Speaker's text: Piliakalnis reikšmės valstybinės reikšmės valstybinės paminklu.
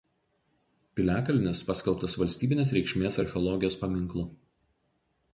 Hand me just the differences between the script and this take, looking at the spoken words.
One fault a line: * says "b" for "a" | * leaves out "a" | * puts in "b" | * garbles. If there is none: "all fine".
* says "paskelbtas" for "reikšmės"
* says "archeologijos" for "valstybinės"